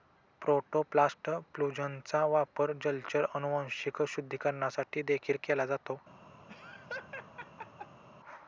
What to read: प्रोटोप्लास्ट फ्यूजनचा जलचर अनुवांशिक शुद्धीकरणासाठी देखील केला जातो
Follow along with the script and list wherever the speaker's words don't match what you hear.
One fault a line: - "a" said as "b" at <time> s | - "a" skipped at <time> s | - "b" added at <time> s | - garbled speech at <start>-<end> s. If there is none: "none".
- "वापर" added at 2.3 s